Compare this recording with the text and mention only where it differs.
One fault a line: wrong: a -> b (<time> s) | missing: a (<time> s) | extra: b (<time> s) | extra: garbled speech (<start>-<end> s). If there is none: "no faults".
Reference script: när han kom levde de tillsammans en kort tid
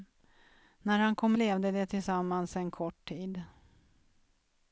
no faults